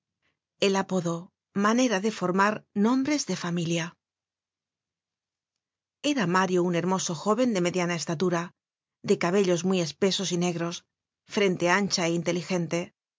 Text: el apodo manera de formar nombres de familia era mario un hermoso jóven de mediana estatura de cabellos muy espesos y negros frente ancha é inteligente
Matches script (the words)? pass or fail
pass